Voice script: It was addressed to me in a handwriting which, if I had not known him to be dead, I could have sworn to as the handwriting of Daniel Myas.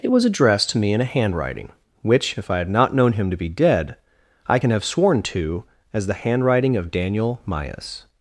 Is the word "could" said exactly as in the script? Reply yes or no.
no